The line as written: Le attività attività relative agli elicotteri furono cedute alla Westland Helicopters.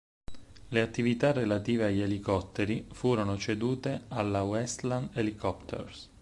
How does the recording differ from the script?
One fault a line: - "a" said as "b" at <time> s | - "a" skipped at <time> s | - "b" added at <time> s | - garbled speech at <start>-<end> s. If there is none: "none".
- "attività" skipped at 1.3 s